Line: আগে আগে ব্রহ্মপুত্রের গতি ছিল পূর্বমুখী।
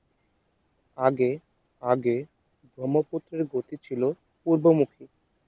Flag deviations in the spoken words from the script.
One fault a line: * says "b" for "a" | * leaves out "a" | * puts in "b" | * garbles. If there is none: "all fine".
all fine